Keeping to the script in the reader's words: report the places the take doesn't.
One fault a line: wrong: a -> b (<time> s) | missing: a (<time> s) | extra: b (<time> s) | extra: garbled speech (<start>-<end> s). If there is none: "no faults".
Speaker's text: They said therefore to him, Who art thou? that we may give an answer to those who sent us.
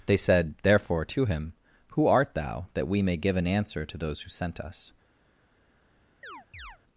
no faults